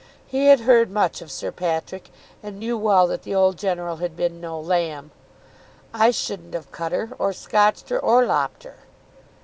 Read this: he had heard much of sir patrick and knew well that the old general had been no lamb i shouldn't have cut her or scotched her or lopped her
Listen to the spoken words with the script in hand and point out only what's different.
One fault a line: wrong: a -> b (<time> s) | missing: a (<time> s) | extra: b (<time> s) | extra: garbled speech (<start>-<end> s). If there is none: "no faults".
no faults